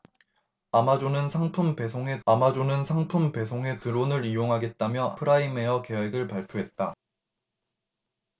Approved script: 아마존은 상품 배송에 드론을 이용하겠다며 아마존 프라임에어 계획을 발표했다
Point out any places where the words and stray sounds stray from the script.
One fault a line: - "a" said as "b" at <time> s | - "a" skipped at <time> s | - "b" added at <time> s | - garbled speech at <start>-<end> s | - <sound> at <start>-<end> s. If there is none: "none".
- "아마존은 상품 배송에" added at 2.3 s
- "아마존" skipped at 5.1 s